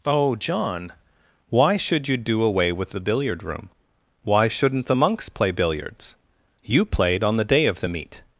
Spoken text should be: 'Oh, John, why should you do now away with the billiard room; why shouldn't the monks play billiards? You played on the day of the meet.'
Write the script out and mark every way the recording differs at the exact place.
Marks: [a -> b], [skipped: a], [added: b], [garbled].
'Oh, John, why should you do [skipped: now] away with the billiard room; why shouldn't the monks play billiards? You played on the day of the meet.'